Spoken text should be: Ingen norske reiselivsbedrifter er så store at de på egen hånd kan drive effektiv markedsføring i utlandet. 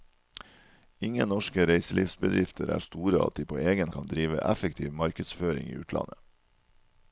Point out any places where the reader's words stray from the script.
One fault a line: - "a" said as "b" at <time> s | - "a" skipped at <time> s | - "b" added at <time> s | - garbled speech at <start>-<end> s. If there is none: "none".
- "så" skipped at 2.8 s
- "hånd" skipped at 3.9 s